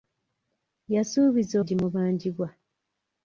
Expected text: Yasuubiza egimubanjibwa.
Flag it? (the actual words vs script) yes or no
no